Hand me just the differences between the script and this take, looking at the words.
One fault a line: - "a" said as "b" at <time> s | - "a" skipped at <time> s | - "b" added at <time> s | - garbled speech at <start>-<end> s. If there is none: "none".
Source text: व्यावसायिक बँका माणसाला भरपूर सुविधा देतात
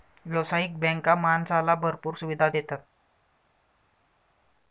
none